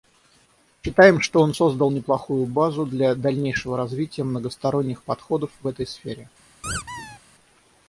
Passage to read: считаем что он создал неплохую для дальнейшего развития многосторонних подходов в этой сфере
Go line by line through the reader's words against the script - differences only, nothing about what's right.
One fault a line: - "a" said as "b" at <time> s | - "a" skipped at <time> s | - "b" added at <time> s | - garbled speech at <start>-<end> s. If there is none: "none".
- "базу" added at 2.4 s